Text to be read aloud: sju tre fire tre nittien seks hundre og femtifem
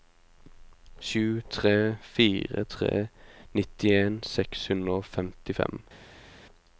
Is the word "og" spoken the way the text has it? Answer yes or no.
yes